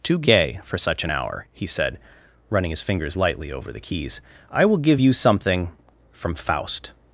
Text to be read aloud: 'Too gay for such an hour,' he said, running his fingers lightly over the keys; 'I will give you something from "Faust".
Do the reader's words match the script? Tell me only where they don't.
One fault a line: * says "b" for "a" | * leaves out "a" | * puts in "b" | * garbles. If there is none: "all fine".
all fine